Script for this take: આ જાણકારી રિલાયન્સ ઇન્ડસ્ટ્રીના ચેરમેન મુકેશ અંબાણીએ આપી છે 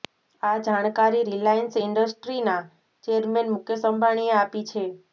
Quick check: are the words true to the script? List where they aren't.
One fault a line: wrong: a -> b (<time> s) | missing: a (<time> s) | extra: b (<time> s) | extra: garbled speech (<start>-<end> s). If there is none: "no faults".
no faults